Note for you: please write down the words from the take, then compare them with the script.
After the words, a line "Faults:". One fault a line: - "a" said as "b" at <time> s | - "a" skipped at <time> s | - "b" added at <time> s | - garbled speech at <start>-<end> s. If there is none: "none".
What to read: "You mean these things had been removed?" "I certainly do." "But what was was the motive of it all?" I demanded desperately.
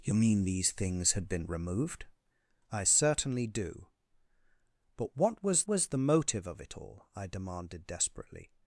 "You mean these things had been removed?" "I certainly do." "But what was was the motive of it all?" I demanded desperately.
Faults:
none